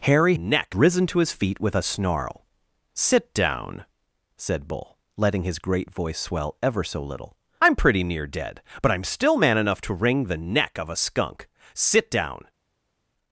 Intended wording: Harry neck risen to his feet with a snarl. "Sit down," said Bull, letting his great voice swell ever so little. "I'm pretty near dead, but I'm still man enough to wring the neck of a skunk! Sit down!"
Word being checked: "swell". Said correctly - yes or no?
yes